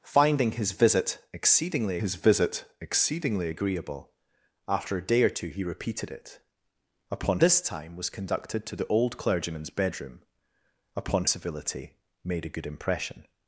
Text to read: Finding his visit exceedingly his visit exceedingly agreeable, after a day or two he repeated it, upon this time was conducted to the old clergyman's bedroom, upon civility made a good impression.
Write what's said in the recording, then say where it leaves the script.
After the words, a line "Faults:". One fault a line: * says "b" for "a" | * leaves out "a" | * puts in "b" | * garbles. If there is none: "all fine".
Finding his visit exceedingly his visit exceedingly agreeable, after a day or two he repeated it, upon this time was conducted to the old clergyman's bedroom, upon civility made a good impression.
Faults:
all fine